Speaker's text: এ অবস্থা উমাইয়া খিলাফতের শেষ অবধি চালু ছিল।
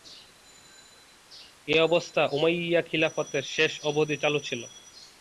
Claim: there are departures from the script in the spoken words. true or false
false